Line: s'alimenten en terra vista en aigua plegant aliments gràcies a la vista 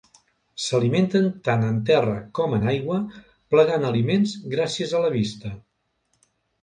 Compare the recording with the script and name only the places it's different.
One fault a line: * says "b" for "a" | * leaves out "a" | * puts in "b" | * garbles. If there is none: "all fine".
* puts in "tant"
* says "com" for "vista"